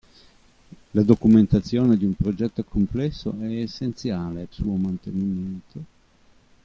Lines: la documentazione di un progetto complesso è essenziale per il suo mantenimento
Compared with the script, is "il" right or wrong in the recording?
wrong